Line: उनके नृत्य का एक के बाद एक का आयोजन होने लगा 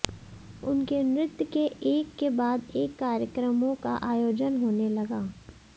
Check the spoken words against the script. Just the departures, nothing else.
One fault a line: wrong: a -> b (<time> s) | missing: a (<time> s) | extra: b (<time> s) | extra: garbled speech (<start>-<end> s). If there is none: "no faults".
wrong: का -> के (1.4 s)
extra: कार्यक्रमों (3.0 s)